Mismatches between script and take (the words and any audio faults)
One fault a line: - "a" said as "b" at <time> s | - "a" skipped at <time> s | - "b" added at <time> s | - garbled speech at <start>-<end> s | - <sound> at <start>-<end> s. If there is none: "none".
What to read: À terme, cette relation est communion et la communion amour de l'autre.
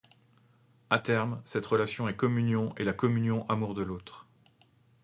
none